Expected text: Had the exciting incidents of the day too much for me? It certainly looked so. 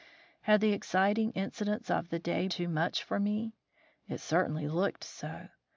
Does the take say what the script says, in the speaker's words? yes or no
yes